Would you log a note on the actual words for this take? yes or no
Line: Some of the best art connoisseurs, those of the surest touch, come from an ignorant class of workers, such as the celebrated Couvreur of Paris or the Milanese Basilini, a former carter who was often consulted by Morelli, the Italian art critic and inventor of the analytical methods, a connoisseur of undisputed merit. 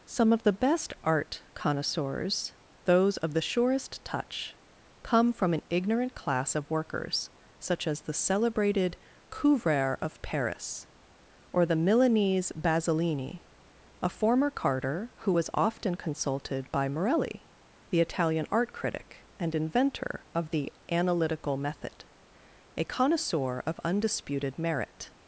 yes